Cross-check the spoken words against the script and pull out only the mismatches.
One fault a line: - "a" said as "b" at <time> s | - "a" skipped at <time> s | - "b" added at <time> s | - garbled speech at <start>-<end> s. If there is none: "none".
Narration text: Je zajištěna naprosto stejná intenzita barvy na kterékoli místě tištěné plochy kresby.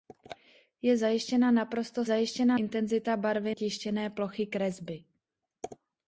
- "stejná" said as "zajištěna" at 2.0 s
- "na kterékoli místě" skipped at 3.5 s